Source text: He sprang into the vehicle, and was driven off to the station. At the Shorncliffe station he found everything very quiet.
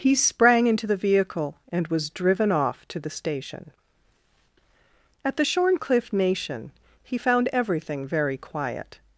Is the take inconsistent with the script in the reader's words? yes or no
yes